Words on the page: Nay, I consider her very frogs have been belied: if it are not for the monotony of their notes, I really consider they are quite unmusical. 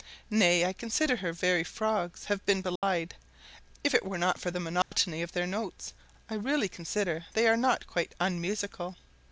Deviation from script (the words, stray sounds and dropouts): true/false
true